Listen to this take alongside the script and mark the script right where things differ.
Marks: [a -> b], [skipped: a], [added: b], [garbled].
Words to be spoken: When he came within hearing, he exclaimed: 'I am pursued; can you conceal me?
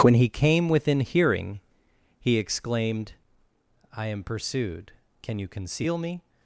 When he came within hearing, he exclaimed: 'I am pursued; can you conceal me?